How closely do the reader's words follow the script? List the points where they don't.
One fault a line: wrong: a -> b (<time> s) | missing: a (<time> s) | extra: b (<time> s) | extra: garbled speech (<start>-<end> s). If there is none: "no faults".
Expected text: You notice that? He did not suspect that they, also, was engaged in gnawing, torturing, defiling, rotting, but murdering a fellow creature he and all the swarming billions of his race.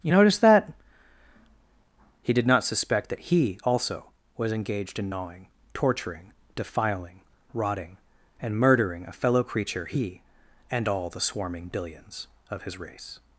wrong: they -> he (3.2 s)
wrong: but -> and (8.4 s)